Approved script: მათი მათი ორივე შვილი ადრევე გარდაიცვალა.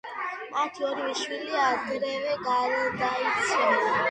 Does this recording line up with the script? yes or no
no